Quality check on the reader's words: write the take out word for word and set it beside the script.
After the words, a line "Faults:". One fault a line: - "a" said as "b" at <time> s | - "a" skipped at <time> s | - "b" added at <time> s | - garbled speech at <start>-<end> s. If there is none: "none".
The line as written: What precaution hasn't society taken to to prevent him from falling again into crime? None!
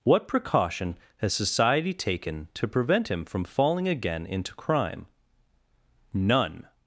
What precaution has society taken to prevent him from falling again into crime? None!
Faults:
- "hasn't" said as "has" at 1.2 s
- "to" skipped at 2.7 s